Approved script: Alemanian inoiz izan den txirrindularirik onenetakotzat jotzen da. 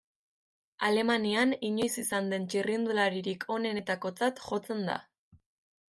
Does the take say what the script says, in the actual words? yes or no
yes